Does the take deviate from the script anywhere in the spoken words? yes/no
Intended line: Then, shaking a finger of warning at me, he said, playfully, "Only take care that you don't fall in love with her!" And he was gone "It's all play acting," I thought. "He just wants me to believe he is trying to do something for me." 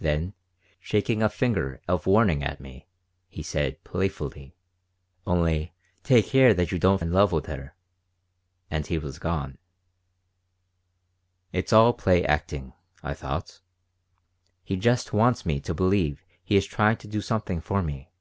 yes